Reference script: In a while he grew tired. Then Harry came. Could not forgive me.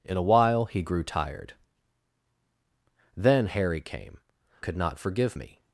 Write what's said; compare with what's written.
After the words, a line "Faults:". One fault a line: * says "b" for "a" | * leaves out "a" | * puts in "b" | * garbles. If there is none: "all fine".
In a while he grew tired. Then Harry came. Could not forgive me.
Faults:
all fine